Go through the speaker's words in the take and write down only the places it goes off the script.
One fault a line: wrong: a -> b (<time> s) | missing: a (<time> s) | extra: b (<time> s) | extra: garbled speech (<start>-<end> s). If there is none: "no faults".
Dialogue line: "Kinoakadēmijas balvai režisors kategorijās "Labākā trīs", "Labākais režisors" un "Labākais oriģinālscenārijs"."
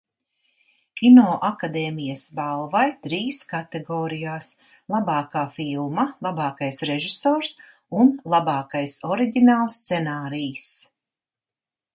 wrong: režisors -> trīs (3.0 s)
wrong: trīs -> filma (5.6 s)